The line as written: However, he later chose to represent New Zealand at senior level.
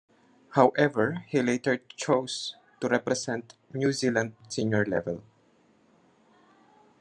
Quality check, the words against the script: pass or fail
fail